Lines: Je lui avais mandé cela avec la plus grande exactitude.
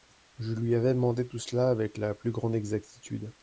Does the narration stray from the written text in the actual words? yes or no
yes